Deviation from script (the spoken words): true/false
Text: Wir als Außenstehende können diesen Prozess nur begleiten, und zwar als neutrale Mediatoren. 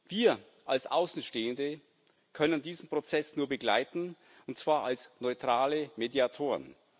false